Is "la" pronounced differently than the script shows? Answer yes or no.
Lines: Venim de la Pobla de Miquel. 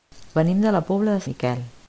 no